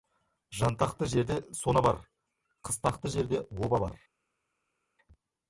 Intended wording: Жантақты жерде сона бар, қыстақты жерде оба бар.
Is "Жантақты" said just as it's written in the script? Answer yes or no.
yes